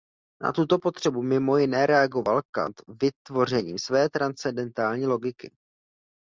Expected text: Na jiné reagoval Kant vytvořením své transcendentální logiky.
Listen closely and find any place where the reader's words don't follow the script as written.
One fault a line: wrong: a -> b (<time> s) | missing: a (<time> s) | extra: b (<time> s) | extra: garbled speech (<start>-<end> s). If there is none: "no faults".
extra: tuto potřebu mimo (0.5 s)